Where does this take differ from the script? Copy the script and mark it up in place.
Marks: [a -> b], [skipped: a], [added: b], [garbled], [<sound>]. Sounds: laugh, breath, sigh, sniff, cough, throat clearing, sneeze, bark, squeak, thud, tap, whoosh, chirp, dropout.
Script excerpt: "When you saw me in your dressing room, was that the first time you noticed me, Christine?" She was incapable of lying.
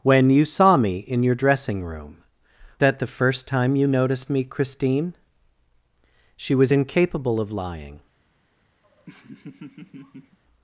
"When you saw me in your dressing room, [skipped: was] that the first time you noticed me, Christine?" She was incapable of lying. [laugh]